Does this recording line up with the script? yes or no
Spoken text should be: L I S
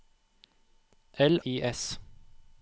yes